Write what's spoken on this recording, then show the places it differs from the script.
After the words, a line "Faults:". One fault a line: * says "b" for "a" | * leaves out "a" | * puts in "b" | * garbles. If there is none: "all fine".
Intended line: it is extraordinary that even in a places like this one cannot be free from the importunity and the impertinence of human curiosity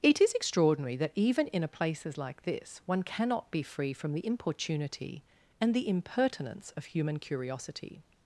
it is extraordinary that even in a places like this one cannot be free from the importunity and the impertinence of human curiosity
Faults:
all fine